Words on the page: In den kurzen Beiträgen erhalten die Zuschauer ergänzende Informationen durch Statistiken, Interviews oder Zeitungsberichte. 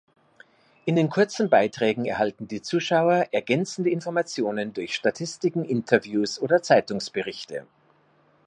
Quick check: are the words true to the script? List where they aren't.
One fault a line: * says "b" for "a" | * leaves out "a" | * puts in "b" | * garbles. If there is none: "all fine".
all fine